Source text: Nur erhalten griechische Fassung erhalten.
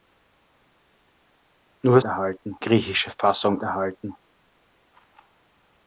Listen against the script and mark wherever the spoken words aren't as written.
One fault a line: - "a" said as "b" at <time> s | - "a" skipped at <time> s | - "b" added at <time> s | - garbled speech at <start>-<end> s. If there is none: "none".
none